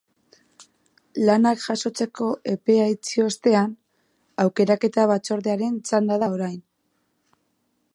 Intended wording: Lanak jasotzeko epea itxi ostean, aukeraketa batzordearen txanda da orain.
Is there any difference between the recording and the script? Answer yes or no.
no